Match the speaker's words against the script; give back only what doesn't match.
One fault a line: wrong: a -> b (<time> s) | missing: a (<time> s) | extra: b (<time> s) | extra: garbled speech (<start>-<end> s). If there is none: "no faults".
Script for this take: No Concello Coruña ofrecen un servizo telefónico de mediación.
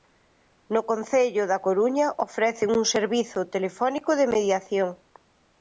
extra: da (1.5 s)